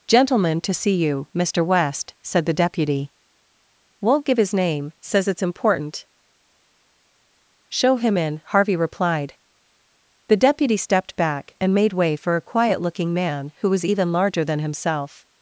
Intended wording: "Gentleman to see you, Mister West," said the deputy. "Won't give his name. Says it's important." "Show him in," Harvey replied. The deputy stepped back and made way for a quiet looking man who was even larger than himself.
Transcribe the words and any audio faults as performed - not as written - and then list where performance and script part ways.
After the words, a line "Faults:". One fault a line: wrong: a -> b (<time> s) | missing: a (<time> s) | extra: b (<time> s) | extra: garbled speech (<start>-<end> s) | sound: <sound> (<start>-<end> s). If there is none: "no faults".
"Gentleman to see you, Mister West," said the deputy. "Won't give his name. Says it's important." "Show him in," Harvey replied. The deputy stepped back and made way for a quiet looking man who was even larger than himself.
Faults:
no faults